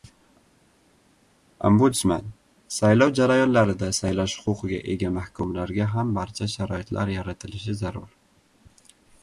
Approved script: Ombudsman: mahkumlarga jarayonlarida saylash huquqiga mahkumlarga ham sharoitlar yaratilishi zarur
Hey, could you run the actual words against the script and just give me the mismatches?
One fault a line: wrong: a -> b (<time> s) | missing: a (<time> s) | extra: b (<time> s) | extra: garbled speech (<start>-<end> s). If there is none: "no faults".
wrong: mahkumlarga -> saylov (2.8 s)
extra: ega (5.0 s)
extra: barcha (6.2 s)